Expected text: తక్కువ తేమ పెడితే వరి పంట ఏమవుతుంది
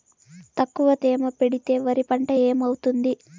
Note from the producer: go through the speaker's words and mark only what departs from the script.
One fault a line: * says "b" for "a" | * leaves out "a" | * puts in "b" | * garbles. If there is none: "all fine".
all fine